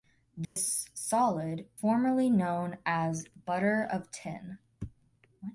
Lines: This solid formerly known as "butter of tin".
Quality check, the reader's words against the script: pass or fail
pass